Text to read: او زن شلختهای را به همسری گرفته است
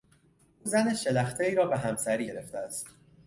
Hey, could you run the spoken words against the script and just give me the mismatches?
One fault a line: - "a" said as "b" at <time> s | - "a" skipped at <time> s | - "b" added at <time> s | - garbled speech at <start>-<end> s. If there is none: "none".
none